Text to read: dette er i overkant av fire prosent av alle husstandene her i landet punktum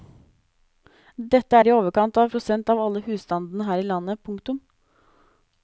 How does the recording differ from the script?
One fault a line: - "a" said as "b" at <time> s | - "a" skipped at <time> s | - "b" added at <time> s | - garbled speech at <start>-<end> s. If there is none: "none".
- "fire" skipped at 2.3 s